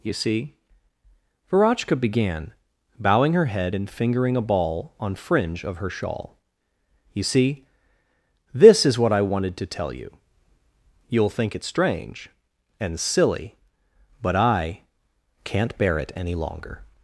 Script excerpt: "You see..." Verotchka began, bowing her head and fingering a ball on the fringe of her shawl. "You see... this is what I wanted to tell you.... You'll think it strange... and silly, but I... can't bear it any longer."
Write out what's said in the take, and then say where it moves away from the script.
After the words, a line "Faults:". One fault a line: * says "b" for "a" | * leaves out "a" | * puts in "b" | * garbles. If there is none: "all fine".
"You see..." Verotchka began, bowing her head and fingering a ball on fringe of her shawl. "You see... this is what I wanted to tell you.... You'll think it strange... and silly, but I... can't bear it any longer."
Faults:
* leaves out "the"